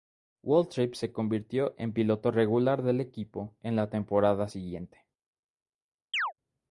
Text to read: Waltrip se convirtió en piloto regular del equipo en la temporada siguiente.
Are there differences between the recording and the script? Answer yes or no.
no